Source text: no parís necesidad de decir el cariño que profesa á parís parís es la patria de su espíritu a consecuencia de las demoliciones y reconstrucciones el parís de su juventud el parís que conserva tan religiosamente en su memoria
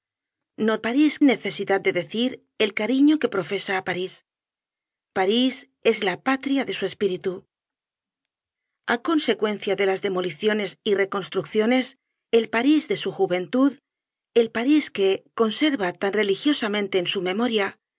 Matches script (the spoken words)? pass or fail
pass